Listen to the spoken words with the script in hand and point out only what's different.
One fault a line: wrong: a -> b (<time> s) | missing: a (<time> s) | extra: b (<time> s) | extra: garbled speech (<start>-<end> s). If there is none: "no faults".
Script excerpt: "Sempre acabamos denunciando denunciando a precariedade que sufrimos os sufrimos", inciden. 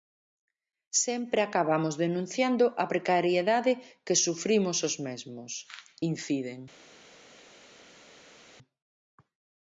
missing: denunciando (2.6 s)
wrong: sufrimos -> mesmos (5.1 s)